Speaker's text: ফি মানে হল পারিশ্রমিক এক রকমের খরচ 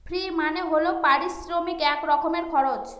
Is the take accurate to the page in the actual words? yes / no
yes